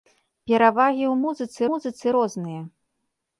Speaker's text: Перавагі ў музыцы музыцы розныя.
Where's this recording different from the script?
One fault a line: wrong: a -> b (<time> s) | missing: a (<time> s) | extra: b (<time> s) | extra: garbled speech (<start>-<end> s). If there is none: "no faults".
no faults